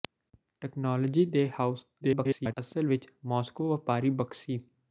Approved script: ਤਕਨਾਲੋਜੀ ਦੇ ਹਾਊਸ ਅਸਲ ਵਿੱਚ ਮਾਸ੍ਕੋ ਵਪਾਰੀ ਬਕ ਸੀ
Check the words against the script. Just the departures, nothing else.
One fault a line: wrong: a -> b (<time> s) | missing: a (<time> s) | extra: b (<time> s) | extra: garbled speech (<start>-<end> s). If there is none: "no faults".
extra: garbled speech (2.0-2.5 s)